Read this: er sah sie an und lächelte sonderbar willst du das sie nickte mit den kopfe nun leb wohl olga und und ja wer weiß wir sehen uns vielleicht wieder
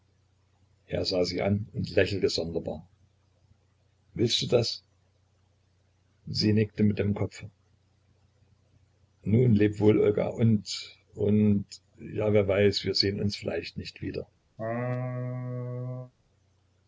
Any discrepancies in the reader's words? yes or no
yes